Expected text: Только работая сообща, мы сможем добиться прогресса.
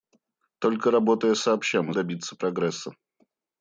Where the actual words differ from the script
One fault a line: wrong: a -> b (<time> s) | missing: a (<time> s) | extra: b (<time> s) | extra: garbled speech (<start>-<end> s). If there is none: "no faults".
missing: сможем (1.9 s)